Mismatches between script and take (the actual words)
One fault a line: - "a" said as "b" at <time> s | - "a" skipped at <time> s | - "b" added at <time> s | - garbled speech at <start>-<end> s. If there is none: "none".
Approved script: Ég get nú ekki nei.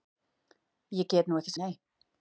none